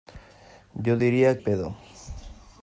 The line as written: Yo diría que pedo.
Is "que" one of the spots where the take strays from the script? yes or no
yes